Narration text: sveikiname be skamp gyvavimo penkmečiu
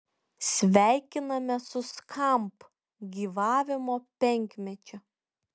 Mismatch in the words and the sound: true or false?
true